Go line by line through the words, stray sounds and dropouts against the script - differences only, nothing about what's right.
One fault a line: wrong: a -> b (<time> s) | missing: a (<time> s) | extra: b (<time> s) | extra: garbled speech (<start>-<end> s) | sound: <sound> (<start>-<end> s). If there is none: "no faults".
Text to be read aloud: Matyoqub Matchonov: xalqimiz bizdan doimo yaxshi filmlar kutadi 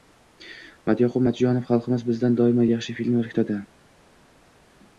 no faults